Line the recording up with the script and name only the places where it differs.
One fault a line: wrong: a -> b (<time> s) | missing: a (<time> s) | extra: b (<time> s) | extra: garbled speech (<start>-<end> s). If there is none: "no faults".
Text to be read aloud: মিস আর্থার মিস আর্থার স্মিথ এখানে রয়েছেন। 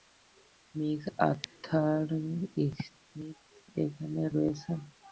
missing: মিস আর্থার (2.1 s)